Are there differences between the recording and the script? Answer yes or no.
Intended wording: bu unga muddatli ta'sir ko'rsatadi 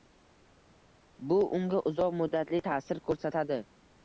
yes